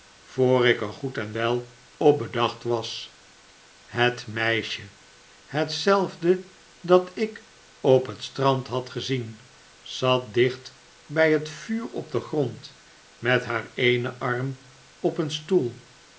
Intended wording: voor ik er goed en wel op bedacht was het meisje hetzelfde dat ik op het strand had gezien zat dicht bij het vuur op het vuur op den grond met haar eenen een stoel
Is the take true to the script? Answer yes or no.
no